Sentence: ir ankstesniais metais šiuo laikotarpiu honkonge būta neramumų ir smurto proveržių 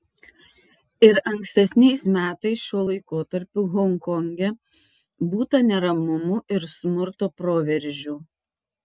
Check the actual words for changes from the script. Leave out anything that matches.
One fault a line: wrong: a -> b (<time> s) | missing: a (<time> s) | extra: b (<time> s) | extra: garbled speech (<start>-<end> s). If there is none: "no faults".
no faults